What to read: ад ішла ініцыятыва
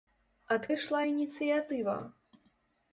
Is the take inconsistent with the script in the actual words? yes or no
no